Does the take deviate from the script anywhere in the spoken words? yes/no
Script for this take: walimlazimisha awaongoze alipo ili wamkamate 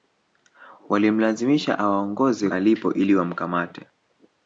no